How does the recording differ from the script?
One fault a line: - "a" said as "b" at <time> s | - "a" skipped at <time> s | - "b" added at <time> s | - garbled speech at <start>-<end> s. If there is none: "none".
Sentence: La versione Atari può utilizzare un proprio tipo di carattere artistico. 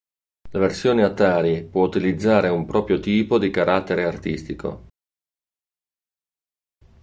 none